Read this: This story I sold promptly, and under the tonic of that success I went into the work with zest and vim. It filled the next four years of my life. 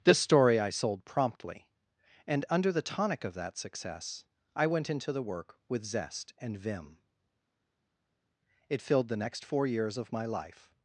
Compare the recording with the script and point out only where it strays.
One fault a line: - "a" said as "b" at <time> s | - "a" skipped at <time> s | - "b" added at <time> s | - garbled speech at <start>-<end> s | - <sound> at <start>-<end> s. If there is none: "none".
none